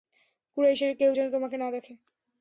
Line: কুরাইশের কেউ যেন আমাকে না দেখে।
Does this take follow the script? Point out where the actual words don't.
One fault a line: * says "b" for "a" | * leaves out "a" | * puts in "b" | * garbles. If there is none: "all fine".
* says "তোমাকে" for "আমাকে"